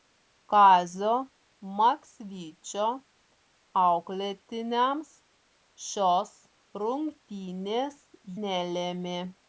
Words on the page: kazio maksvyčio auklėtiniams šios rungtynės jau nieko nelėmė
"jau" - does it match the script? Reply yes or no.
no